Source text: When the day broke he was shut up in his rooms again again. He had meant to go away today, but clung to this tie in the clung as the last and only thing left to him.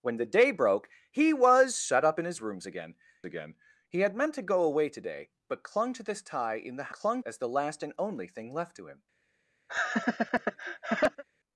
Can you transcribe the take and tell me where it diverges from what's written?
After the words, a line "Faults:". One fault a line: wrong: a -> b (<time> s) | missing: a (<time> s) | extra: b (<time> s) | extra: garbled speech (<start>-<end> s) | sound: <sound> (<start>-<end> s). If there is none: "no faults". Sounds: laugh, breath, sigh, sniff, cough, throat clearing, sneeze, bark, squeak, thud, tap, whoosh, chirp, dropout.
When the day broke he was shut up in his rooms again again. He had meant to go away today, but clung to this tie in the clung as the last and only thing left to him.
Faults:
sound: laugh (9.7-11.2 s)